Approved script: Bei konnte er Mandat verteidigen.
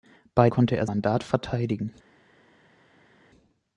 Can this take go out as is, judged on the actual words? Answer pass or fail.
pass